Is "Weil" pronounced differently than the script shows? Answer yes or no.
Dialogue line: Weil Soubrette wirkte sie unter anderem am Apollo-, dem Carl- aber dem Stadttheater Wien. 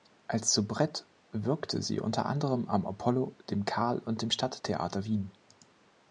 yes